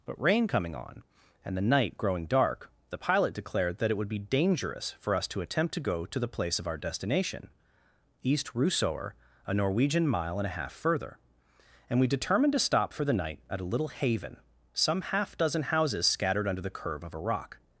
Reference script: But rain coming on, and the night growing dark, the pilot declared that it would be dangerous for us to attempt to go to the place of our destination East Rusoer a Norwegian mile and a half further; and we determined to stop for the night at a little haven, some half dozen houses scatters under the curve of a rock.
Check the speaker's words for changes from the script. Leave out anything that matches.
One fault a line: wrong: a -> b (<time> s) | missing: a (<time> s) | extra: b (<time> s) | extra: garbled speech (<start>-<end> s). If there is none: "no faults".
wrong: scatters -> scattered (16.1 s)